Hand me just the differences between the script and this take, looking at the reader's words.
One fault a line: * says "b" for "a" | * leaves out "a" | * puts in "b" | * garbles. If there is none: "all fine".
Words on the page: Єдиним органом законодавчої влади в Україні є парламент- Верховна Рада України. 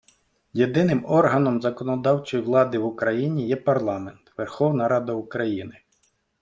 all fine